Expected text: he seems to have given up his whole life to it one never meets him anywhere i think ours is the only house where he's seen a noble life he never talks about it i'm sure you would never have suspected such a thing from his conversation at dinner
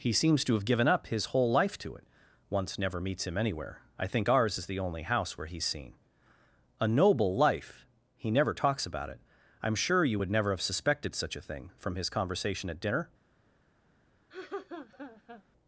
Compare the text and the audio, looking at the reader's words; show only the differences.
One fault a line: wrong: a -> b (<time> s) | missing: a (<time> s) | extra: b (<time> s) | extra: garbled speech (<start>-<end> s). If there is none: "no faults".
wrong: one -> once (2.5 s)